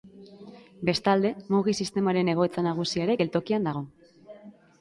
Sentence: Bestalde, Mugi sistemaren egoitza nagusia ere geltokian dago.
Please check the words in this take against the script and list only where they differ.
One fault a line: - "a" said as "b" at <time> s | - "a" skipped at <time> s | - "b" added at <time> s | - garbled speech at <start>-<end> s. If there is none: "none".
none